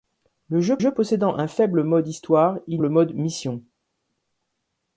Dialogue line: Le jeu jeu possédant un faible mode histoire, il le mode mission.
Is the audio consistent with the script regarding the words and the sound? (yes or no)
yes